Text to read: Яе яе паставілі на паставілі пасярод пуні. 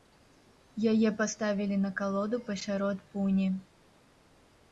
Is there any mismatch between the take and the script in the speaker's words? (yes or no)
yes